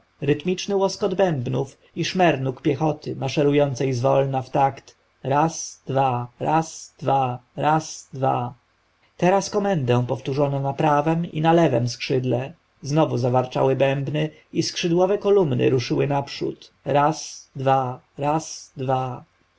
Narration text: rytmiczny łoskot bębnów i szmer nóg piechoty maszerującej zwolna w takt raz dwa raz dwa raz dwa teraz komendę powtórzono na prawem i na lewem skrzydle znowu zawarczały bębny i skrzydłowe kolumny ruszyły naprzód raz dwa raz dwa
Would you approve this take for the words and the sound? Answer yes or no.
yes